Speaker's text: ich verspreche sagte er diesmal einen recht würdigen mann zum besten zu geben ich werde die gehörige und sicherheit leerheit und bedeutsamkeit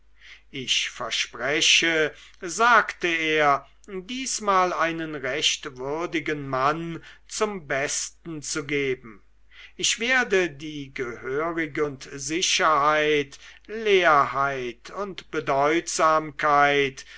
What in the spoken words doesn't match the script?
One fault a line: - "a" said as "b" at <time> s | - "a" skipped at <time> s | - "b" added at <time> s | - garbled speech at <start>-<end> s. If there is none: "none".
none